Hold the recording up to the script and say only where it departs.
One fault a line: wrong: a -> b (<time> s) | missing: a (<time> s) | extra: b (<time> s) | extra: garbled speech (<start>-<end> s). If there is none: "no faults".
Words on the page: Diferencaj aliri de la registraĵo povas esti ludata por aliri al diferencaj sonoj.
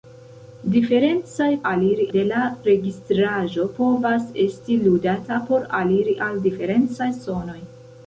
no faults